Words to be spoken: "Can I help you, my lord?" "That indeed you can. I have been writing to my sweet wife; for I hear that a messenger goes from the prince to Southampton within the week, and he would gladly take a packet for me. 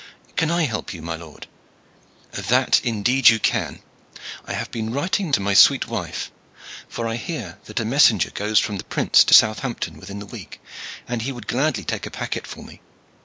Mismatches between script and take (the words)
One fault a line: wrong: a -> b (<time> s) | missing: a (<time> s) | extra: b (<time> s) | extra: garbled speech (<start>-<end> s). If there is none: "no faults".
no faults